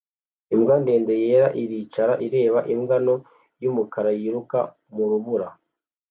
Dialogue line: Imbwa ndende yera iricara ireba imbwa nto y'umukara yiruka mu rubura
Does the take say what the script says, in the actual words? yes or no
yes